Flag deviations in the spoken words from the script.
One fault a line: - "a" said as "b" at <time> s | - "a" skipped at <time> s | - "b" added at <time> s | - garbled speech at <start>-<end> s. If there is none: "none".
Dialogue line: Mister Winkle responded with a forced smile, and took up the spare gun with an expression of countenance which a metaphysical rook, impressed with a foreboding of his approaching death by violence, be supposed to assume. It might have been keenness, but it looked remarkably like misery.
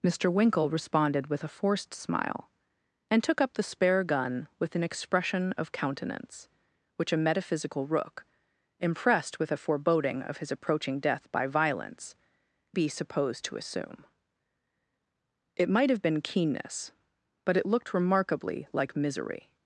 none